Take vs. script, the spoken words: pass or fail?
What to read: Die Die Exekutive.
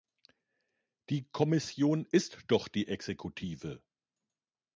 fail